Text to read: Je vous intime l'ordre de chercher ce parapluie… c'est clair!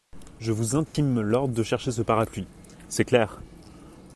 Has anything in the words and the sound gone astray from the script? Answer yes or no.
yes